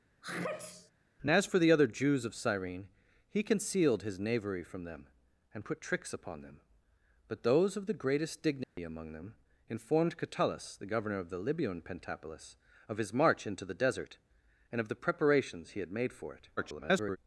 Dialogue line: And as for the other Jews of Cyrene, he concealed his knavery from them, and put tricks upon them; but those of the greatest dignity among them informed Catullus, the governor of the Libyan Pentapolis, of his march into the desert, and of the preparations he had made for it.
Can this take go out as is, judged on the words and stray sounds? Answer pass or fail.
fail